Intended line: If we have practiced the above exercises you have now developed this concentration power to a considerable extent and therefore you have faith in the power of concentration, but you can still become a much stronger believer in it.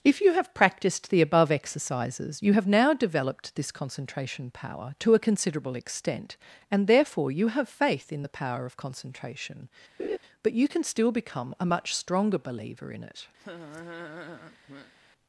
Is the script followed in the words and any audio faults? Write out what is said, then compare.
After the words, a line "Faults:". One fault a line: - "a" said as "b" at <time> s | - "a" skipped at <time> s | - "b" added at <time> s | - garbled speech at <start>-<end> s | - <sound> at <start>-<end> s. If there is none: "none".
If you have practiced the above exercises you have now developed this concentration power to a considerable extent and therefore you have faith in the power of concentration, but you can still become a much stronger believer in it.
Faults:
- "we" said as "you" at 0.2 s
- laugh at 10.0-10.2 s
- laugh at 13.4-14.9 s